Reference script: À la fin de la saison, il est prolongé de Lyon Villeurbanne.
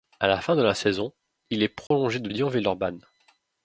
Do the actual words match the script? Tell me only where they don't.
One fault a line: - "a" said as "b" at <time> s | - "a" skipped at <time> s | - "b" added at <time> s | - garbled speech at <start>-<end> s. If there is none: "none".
none